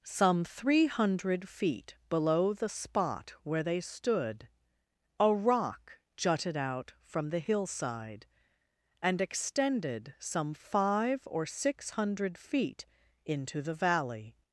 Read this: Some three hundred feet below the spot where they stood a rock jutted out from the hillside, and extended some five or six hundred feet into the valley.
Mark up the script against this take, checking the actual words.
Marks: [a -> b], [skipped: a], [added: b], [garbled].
Some three hundred feet below the spot where they stood a rock jutted out from the hillside, and extended some five or six hundred feet into the valley.